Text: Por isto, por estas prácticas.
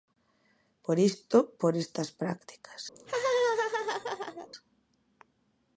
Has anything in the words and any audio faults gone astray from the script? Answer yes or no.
yes